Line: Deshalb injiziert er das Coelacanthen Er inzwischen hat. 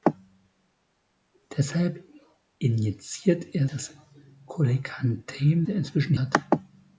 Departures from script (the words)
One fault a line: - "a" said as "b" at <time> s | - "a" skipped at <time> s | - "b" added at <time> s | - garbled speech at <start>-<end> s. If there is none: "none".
none